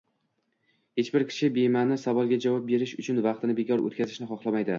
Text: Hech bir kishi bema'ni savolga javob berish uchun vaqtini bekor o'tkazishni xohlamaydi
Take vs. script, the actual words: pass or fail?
pass